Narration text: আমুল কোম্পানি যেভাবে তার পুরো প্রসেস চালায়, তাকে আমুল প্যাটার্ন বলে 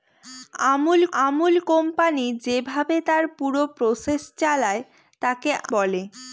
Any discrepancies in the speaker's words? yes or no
yes